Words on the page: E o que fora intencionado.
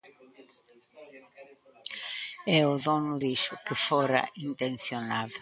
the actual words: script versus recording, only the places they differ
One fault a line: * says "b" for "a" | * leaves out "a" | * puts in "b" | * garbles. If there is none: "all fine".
* puts in "dono dixo"